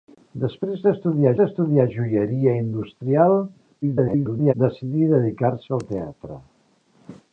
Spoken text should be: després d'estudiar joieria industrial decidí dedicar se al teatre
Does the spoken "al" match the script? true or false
true